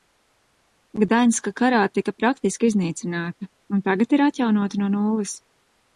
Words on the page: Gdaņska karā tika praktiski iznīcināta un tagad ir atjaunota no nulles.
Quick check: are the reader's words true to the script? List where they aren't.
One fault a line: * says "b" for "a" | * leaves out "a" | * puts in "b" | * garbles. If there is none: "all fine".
all fine